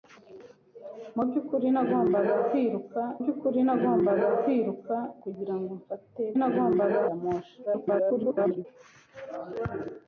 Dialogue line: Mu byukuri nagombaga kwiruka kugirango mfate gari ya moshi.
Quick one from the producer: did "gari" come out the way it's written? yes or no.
no